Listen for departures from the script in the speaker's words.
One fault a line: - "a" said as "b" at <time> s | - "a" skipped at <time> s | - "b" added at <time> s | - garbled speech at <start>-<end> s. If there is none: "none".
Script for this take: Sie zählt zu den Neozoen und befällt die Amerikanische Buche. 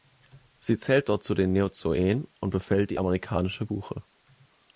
- "dort" added at 1.1 s